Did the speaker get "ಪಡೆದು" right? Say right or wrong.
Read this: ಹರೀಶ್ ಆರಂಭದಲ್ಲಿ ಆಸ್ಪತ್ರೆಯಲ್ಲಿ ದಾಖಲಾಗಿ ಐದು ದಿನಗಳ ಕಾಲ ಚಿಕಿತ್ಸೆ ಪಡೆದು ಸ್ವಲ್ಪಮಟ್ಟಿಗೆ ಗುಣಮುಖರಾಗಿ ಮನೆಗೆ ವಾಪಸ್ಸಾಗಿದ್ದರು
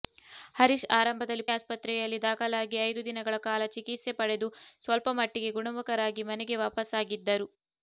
right